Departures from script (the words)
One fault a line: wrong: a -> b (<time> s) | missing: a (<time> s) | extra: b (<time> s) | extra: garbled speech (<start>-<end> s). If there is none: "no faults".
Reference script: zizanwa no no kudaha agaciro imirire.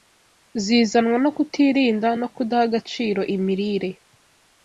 extra: kutirinda (1.4 s)